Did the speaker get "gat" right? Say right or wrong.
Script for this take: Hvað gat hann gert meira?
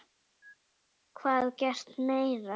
wrong